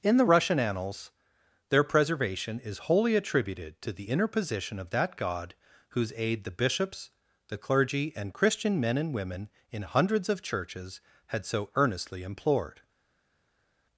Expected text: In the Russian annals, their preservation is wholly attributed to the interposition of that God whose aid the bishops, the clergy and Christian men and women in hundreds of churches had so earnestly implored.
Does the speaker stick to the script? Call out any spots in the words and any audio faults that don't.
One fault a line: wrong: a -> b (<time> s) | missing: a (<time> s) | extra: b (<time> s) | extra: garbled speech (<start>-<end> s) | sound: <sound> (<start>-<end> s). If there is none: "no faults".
no faults